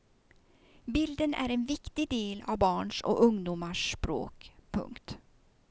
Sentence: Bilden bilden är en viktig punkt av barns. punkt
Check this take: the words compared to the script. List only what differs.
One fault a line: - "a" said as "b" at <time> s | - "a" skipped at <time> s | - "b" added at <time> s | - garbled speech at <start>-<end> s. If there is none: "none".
- "bilden" skipped at 1.3 s
- "punkt" said as "del" at 2.1 s
- "och ungdomars språk" added at 3.0 s